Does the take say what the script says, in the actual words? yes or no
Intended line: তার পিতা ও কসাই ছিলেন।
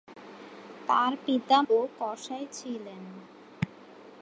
yes